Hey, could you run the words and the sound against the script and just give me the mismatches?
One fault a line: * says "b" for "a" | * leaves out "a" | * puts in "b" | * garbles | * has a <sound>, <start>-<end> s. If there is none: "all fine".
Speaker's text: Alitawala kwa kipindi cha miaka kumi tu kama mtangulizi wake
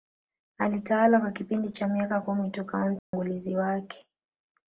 * has a dropout, 3.0-3.1 s